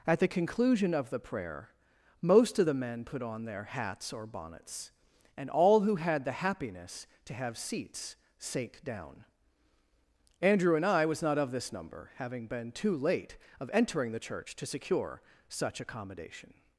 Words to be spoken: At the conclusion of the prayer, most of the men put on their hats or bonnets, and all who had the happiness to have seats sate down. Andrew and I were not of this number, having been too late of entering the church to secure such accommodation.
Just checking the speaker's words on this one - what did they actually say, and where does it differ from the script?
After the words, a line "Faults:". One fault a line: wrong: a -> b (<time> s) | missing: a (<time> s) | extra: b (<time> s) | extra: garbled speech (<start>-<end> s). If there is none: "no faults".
At the conclusion of the prayer, most of the men put on their hats or bonnets, and all who had the happiness to have seats sate down. Andrew and I was not of this number, having been too late of entering the church to secure such accommodation.
Faults:
wrong: were -> was (11.1 s)